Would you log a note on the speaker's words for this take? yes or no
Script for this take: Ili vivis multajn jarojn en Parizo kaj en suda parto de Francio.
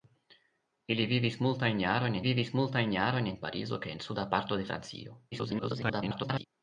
yes